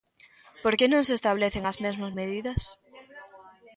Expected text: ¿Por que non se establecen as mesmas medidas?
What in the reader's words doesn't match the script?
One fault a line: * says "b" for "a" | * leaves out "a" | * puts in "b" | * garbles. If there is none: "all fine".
all fine